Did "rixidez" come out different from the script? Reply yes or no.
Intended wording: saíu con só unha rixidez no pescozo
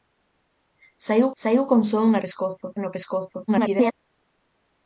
yes